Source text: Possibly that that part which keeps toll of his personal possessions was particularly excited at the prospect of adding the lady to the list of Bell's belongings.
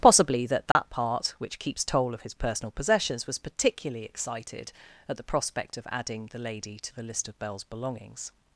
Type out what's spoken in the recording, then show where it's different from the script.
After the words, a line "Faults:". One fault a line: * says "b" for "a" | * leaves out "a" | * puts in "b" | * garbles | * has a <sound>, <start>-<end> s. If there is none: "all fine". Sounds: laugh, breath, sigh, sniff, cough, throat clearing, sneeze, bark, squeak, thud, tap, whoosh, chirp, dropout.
Possibly that that part which keeps toll of his personal possessions was particularly excited at the prospect of adding the lady to the list of Bell's belongings.
Faults:
* has a dropout, 0.7-0.8 s